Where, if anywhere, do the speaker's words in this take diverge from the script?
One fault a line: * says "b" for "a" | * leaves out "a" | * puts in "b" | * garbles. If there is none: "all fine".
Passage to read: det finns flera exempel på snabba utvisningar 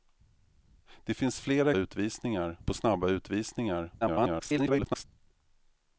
* says "utvisningar" for "exempel"
* garbles